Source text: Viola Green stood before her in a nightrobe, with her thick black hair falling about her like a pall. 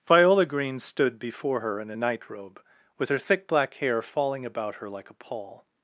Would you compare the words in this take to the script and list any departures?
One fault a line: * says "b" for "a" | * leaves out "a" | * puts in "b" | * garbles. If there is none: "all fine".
all fine